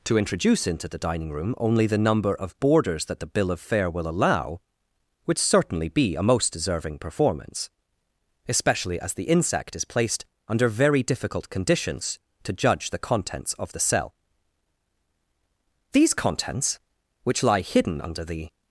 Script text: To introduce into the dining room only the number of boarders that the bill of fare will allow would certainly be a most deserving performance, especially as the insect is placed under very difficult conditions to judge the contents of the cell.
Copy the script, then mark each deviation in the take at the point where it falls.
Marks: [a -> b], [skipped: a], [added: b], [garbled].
To introduce into the dining room only the number of boarders that the bill of fare will allow would certainly be a most deserving performance, especially as the insect is placed under very difficult conditions to judge the contents of the cell. [added: These contents which lie hidden under the]